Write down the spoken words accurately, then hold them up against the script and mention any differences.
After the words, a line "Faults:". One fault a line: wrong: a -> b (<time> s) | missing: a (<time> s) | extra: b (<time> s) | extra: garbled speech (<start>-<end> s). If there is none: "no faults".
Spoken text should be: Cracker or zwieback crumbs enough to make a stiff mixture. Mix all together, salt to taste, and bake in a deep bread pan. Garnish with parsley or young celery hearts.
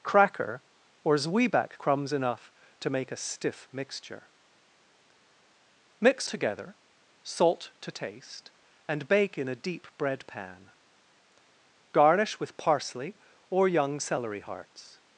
Cracker or zwieback crumbs enough to make a stiff mixture. Mix together, salt to taste, and bake in a deep bread pan. Garnish with parsley or young celery hearts.
Faults:
missing: all (6.3 s)